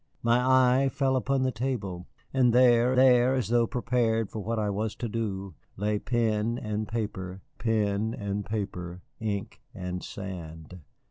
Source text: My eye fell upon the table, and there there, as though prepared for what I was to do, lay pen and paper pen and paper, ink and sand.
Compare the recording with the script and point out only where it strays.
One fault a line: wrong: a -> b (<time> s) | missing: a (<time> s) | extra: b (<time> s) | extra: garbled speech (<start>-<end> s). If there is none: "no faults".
no faults